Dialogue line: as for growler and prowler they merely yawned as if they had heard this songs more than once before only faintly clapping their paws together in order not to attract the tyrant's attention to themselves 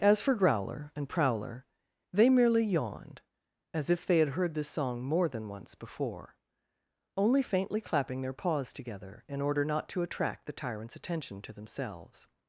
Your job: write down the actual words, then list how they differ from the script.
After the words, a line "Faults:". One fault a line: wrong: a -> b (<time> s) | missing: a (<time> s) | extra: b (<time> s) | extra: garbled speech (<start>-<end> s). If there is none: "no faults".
as for growler and prowler they merely yawned as if they had heard this song more than once before only faintly clapping their paws together in order not to attract the tyrant's attention to themselves
Faults:
wrong: songs -> song (4.7 s)